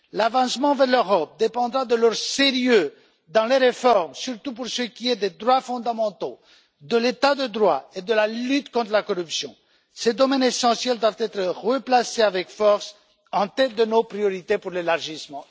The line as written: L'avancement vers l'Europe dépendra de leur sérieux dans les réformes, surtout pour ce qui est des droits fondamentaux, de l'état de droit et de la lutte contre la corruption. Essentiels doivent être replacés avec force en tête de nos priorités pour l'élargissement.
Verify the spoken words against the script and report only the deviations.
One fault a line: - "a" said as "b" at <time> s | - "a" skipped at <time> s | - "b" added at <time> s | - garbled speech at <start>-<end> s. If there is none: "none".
- "Ces domaines" added at 9.9 s